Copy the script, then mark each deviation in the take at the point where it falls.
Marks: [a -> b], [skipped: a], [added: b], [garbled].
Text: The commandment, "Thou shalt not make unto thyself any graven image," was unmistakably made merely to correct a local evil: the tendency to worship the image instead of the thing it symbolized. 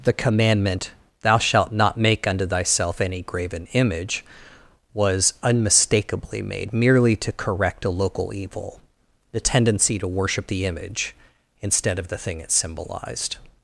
The commandment, "Thou shalt not make unto thyself any graven image," was unmistakably made merely to correct a local evil: the tendency to worship the image instead of the thing it symbolized.